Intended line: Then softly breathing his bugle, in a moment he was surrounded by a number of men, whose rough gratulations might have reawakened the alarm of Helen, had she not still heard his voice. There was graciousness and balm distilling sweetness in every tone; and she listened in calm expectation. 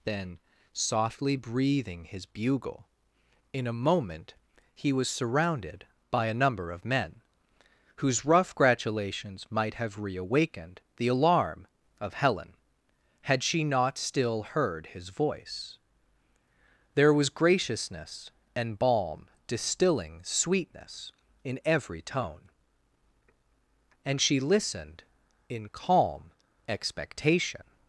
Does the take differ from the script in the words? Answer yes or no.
no